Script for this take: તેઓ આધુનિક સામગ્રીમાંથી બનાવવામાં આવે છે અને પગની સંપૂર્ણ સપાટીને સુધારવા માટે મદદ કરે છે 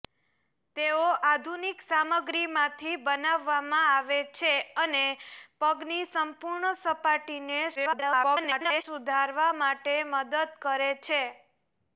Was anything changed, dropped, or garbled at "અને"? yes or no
no